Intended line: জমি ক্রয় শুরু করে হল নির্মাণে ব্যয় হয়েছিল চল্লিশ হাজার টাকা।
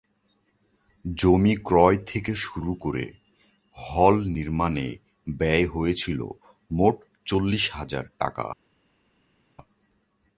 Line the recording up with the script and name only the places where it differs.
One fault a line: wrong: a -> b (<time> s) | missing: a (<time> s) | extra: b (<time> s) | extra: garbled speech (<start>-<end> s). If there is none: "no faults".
extra: থেকে (2.1 s)
extra: মোট (6.7 s)